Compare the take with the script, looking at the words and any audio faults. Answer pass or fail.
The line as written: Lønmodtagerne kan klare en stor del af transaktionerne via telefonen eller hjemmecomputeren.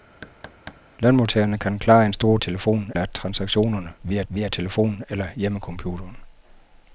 fail